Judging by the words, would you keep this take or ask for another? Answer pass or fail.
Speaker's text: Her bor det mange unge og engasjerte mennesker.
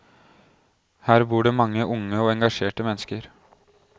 pass